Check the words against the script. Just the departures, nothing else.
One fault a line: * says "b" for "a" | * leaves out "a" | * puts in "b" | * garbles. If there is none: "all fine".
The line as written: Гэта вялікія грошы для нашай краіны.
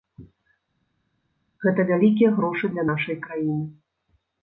all fine